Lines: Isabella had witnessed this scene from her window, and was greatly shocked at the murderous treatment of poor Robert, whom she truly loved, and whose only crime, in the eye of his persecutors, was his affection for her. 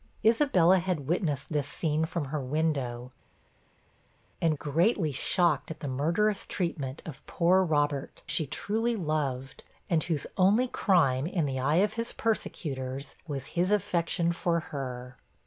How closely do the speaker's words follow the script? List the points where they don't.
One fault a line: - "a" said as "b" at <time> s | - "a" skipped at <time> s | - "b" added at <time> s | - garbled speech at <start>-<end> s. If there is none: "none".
- "was" skipped at 4.6 s
- "whom" skipped at 8.2 s